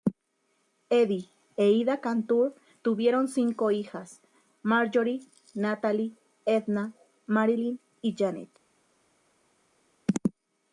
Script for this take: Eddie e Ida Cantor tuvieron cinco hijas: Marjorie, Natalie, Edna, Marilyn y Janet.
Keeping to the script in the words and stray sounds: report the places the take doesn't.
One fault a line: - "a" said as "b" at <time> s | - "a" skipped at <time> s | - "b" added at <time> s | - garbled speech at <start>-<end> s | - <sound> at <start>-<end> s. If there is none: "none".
none